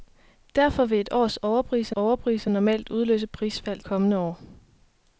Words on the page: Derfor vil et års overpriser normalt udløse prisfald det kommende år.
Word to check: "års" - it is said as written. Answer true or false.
true